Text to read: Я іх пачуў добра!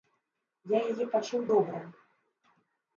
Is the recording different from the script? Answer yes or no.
yes